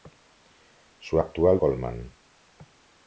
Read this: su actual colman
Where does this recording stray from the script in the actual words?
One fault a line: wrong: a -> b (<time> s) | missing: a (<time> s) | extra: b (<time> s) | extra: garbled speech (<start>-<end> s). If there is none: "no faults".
no faults